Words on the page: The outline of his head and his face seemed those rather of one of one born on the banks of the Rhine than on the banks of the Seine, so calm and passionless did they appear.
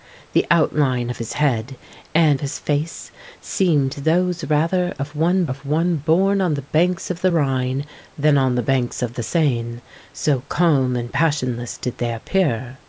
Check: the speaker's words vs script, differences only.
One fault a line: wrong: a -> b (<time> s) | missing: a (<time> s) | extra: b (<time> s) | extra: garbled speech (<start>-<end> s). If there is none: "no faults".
no faults